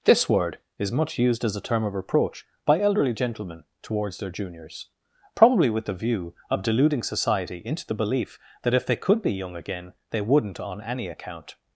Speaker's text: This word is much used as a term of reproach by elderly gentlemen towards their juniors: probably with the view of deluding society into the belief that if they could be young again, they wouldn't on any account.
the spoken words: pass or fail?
pass